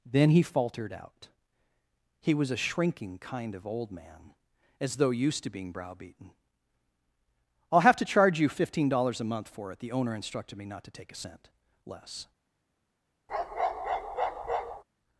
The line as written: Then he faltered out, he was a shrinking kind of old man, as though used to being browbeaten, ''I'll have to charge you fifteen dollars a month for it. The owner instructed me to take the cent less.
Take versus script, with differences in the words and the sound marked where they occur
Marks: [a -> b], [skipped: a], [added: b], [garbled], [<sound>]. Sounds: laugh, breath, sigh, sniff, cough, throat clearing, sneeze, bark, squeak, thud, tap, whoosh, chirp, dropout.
Then he faltered out, he was a shrinking kind of old man, as though used to being browbeaten, ''I'll have to charge you fifteen dollars a month for it. The owner instructed me [added: not] to take [the -> a] cent less. [bark]